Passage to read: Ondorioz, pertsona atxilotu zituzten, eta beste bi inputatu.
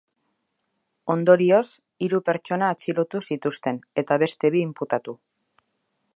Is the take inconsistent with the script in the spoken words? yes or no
yes